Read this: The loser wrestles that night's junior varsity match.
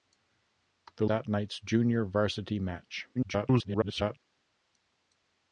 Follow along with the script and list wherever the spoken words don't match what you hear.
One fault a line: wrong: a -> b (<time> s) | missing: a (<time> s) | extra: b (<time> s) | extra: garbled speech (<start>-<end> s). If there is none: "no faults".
missing: loser wrestles (1.1 s)
extra: garbled speech (3.1-4.2 s)